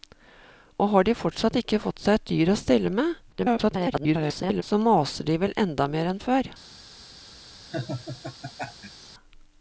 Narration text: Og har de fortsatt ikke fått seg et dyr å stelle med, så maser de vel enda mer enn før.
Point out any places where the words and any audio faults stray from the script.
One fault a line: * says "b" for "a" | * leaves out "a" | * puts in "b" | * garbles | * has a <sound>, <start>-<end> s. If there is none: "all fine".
* garbles
* has a laugh, 7.7-9.1 s